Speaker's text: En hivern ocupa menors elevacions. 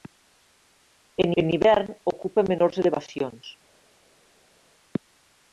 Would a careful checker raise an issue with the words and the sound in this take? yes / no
yes